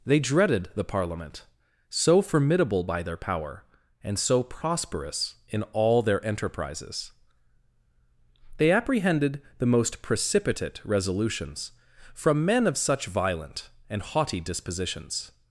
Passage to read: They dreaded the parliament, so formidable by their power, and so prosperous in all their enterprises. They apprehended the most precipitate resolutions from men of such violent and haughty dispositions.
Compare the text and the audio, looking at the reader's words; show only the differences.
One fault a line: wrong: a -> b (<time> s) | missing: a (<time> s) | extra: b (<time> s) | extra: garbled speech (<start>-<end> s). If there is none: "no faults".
no faults